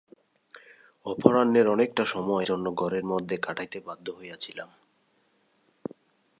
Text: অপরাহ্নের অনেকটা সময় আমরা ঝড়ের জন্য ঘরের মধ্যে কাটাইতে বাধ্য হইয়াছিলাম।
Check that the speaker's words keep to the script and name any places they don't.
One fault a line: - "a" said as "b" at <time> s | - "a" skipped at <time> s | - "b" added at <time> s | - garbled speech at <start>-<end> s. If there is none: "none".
- "আমরা ঝড়ের" skipped at 2.5 s